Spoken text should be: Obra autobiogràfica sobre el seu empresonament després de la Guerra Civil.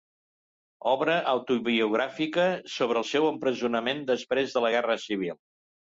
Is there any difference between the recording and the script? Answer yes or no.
no